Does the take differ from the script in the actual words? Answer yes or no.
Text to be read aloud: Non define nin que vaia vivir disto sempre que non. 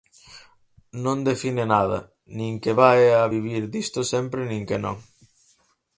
yes